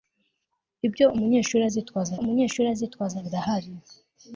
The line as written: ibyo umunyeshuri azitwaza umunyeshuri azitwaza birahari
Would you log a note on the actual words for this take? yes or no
no